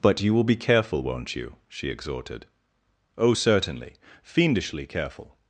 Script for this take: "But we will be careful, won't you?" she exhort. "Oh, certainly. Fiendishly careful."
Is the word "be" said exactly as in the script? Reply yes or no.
yes